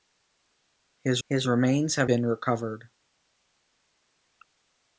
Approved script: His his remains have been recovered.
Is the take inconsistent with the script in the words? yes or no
no